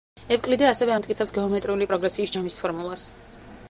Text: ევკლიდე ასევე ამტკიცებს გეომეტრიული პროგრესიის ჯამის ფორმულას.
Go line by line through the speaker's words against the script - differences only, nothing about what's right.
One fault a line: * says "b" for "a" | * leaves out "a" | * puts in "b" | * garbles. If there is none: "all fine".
all fine